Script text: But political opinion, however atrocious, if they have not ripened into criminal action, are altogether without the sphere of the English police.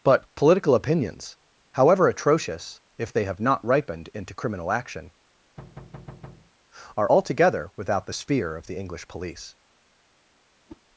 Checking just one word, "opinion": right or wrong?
wrong